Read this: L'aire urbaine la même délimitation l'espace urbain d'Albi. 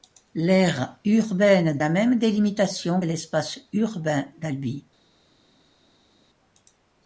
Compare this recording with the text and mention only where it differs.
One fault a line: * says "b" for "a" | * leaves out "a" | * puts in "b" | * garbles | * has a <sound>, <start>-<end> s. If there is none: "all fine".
all fine